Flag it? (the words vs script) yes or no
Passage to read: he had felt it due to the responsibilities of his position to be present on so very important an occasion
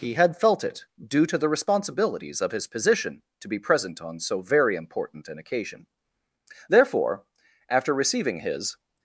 yes